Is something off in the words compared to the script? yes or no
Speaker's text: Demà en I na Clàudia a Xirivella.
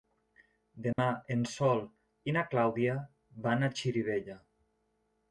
yes